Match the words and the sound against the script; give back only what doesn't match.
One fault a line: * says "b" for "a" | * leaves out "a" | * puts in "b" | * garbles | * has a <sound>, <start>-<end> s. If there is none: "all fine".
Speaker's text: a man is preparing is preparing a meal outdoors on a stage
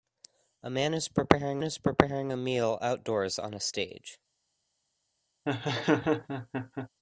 * has a laugh, 5.5-6.9 s